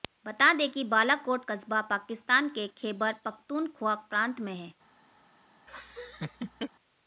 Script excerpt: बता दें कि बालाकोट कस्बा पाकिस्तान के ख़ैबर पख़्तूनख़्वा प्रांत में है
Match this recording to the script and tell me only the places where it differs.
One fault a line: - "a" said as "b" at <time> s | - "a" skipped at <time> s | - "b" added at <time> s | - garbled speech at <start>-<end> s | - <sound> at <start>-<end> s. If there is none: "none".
- laugh at 5.7-6.7 s